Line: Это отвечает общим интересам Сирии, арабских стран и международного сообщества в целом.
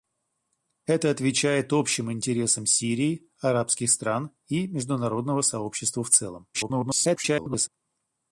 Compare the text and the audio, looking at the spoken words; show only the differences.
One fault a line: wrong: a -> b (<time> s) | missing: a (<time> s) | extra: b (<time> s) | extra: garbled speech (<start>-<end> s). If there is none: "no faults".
extra: garbled speech (6.5-7.7 s)